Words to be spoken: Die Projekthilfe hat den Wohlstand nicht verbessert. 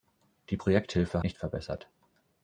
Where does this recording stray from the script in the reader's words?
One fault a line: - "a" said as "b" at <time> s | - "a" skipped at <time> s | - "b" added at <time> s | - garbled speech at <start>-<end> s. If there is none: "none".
- "hat den Wohlstand" skipped at 1.2 s